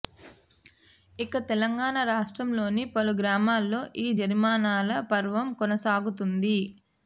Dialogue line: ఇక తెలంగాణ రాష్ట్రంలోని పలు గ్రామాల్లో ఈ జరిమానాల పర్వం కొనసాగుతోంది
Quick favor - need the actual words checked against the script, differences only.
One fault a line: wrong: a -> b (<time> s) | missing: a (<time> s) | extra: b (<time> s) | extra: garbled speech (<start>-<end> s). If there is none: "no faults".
no faults